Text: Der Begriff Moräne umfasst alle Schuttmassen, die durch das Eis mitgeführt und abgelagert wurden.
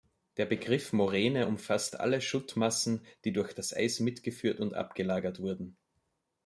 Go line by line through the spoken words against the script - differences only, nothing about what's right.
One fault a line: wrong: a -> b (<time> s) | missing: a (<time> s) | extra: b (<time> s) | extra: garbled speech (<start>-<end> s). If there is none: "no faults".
no faults